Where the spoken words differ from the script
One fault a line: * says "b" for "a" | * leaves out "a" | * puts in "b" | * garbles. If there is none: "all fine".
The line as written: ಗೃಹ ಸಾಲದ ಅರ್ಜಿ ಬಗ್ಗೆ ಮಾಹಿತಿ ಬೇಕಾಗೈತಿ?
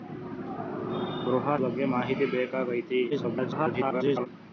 * leaves out "ಸಾಲದ ಅರ್ಜಿ"
* garbles